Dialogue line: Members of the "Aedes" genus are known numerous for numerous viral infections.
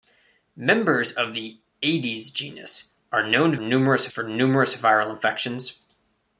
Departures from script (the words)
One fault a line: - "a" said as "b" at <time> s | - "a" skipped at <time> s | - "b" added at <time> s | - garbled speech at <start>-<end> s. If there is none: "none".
none